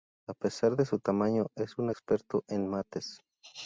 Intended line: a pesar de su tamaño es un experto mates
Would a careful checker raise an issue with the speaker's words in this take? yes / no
yes